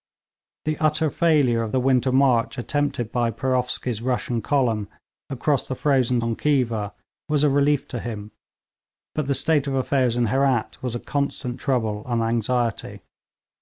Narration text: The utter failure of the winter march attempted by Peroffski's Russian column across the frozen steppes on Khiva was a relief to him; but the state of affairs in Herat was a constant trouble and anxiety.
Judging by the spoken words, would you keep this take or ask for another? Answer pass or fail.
fail